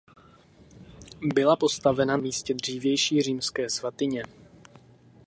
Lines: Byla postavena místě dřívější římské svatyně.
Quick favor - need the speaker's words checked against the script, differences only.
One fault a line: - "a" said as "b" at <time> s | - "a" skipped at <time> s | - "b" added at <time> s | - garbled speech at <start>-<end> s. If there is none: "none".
none